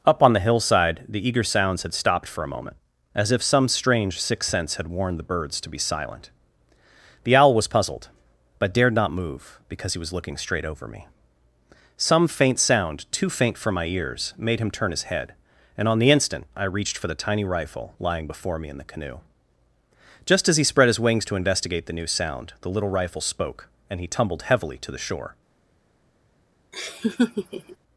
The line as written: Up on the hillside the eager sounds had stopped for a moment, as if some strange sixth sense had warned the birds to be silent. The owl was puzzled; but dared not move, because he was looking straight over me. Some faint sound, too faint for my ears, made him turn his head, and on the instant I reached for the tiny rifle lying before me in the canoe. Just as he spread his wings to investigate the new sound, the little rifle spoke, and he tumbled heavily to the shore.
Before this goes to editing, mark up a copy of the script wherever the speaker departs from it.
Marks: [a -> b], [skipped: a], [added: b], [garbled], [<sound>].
Up on the hillside the eager sounds had stopped for a moment, as if some strange sixth sense had warned the birds to be silent. The owl was puzzled; but dared not move, because he was looking straight over me. Some faint sound, too faint for my ears, made him turn his head, and on the instant I reached for the tiny rifle lying before me in the canoe. Just as he spread his wings to investigate the new sound, the little rifle spoke, and he tumbled heavily to the shore. [laugh]